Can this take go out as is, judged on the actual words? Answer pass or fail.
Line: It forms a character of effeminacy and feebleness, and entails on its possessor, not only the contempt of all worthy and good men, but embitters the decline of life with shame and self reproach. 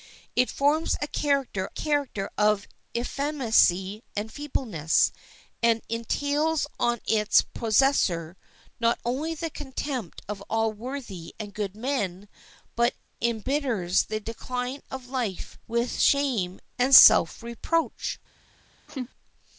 fail